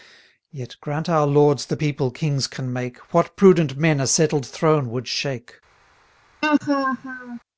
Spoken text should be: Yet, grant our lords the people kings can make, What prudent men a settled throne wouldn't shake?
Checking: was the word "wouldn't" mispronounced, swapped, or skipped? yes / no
yes